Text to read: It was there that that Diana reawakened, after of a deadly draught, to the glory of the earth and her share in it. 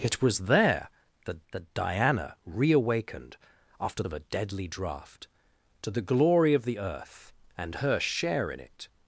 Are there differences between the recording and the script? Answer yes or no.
no